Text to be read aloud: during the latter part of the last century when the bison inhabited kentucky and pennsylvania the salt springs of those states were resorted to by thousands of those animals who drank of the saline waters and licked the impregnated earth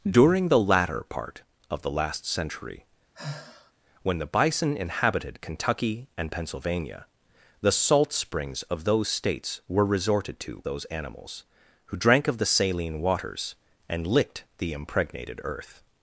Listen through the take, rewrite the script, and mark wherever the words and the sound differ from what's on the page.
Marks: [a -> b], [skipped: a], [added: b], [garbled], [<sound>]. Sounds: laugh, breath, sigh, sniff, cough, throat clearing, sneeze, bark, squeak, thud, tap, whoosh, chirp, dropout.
during the latter part of the last century [sigh] when the bison inhabited kentucky and pennsylvania the salt springs of those states were resorted to [skipped: by thousands of] those animals who drank of the saline waters and licked the impregnated earth